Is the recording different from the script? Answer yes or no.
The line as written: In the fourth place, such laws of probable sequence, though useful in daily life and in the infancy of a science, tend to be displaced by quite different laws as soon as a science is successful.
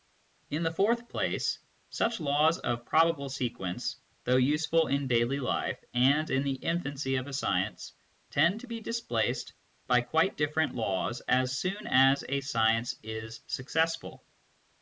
no